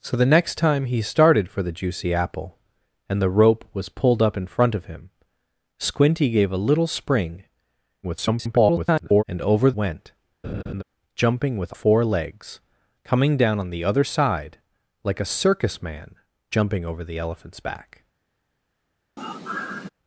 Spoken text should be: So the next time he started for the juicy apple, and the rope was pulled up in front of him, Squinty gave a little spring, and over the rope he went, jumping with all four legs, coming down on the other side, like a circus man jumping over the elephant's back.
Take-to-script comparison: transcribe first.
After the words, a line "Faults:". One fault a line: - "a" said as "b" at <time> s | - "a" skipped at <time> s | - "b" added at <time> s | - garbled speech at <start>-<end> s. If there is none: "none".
So the next time he started for the juicy apple, and the rope was pulled up in front of him, Squinty gave a little spring, [garbled] and over went, jumping with four legs, coming down on the other side, like a circus man jumping over the elephant's back.
Faults:
- garbled speech at 8.0-9.2 s
- "the rope he" skipped at 9.7 s
- "all" skipped at 11.7 s